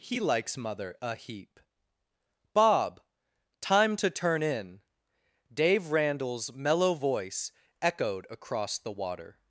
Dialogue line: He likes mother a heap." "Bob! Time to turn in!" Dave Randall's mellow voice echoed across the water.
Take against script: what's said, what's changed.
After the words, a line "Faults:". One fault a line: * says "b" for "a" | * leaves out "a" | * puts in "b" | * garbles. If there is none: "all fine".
He likes mother a heap." "Bob! Time to turn in!" Dave Randall's mellow voice echoed across the water.
Faults:
all fine